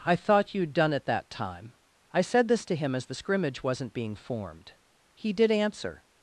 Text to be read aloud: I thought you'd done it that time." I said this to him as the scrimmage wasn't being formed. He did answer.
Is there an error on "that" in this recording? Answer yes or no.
no